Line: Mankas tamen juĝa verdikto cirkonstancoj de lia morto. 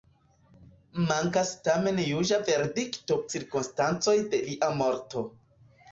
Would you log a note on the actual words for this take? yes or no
no